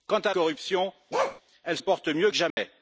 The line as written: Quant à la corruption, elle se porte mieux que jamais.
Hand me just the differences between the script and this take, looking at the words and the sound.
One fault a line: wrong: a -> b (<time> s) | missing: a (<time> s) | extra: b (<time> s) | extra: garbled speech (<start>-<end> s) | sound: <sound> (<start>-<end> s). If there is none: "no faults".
missing: la (0.3 s)
sound: bark (1.1-1.4 s)
missing: se (1.8 s)
sound: dropout (2.5-2.6 s)